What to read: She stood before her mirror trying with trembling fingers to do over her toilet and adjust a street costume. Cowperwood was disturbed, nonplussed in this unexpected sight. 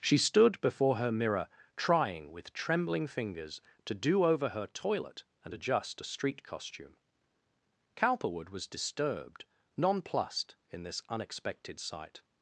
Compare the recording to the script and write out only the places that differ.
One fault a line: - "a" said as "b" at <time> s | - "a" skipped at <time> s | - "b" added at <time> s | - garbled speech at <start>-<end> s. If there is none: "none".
none